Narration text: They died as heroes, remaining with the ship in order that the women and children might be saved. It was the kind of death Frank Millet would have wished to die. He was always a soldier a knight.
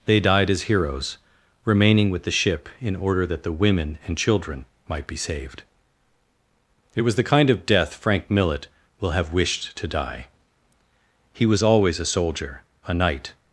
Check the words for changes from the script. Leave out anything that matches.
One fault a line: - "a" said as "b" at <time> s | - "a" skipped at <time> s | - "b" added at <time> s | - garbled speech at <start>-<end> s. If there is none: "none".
- "would" said as "will" at 9.0 s